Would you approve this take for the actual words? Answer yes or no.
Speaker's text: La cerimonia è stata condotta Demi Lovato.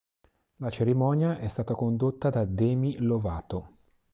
no